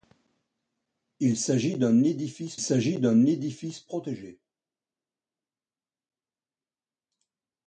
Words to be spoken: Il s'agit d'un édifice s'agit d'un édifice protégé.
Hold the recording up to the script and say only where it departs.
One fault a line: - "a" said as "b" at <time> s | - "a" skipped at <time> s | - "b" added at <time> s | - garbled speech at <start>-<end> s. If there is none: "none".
none